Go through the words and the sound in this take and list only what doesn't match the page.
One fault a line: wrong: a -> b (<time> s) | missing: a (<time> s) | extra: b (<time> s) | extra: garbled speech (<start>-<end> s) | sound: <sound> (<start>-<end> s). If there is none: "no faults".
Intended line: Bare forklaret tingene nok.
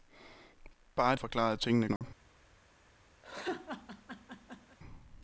sound: dropout (2.0-2.0 s)
sound: laugh (3.2-4.8 s)